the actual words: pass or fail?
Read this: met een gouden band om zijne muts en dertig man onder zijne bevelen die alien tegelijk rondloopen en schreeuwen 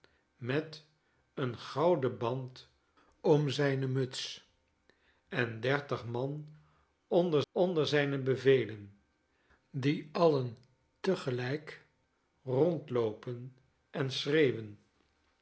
fail